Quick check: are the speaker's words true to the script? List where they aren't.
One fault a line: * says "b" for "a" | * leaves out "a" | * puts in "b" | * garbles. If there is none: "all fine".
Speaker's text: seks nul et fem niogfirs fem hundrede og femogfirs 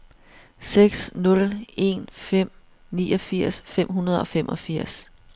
* says "en" for "et"